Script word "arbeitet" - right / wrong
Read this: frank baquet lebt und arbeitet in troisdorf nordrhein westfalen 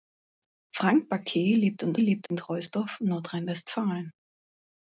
wrong